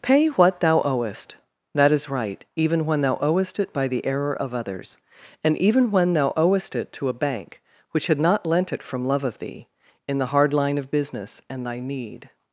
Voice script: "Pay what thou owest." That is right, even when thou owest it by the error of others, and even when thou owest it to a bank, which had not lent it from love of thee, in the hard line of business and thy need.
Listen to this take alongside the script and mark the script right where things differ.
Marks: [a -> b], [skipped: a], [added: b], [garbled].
"Pay what thou owest." That is right, even when thou owest it by the error of others, and even when thou owest it to a bank, which had not lent it from love of thee, in the hard line of business and thy need.